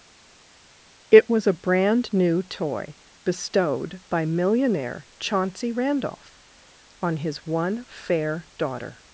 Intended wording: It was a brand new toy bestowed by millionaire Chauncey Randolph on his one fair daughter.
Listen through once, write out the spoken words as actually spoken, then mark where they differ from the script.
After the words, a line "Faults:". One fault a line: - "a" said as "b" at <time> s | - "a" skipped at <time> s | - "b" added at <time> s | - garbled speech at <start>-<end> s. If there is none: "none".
It was a brand new toy bestowed by millionaire Chauncey Randolph on his one fair daughter.
Faults:
none